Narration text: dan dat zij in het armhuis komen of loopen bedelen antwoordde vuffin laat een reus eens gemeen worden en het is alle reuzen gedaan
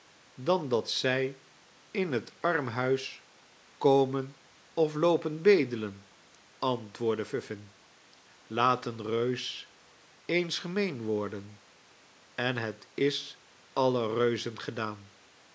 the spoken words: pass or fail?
pass